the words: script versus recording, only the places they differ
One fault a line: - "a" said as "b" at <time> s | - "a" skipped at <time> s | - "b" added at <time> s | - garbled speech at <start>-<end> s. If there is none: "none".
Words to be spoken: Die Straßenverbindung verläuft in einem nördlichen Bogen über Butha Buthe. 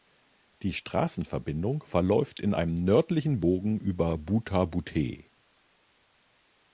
none